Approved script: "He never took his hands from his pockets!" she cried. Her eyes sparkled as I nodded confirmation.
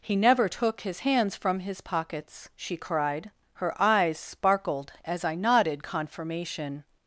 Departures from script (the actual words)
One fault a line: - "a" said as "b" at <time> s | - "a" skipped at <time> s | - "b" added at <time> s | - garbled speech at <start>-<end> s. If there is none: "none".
none